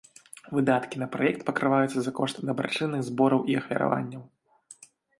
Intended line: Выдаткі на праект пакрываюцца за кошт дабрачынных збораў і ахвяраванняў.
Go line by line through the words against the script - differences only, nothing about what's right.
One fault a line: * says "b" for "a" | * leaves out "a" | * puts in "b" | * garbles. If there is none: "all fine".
all fine